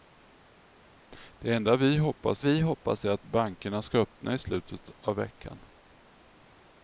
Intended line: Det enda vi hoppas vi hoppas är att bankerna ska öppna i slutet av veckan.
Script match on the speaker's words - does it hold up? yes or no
yes